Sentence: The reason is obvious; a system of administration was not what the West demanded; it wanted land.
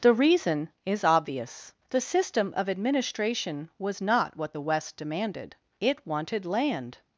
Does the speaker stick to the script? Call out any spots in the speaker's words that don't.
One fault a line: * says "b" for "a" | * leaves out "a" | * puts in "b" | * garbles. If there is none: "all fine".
* says "the" for "a"